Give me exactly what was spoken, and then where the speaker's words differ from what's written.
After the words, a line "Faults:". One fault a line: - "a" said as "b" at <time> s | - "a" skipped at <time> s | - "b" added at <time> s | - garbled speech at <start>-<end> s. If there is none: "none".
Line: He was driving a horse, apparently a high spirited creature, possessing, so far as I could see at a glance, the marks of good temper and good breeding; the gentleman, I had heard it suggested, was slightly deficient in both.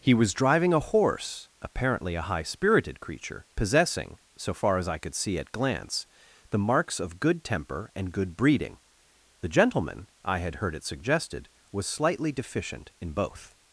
He was driving a horse, apparently a high spirited creature, possessing, so far as I could see at glance, the marks of good temper and good breeding; the gentleman, I had heard it suggested, was slightly deficient in both.
Faults:
- "a" skipped at 5.5 s